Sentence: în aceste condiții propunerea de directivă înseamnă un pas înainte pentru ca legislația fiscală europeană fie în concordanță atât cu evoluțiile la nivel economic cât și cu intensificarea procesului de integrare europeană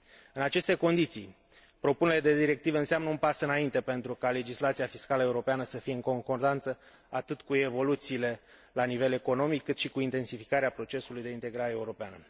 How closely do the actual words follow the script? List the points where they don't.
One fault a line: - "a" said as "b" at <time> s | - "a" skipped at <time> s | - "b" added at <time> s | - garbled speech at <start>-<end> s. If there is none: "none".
- "să" added at 5.6 s